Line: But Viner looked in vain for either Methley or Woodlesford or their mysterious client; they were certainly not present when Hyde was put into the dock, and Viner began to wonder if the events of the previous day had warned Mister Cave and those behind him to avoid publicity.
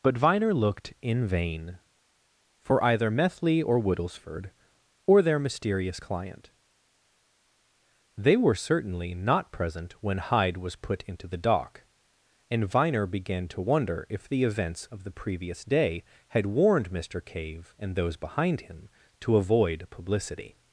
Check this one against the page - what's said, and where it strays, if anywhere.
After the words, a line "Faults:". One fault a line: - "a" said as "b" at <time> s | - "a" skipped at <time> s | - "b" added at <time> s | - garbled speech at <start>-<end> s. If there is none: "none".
But Viner looked in vain for either Methley or Woodlesford or their mysterious client; they were certainly not present when Hyde was put into the dock, and Viner began to wonder if the events of the previous day had warned Mister Cave and those behind him to avoid publicity.
Faults:
none